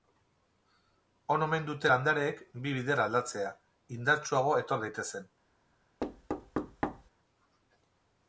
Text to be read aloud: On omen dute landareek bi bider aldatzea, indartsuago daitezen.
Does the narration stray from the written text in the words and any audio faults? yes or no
yes